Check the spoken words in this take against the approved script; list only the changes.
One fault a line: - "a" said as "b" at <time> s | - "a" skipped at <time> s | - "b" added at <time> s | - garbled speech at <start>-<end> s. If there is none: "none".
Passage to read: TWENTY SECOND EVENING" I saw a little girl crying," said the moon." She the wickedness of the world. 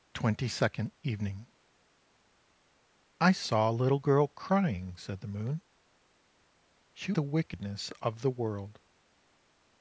none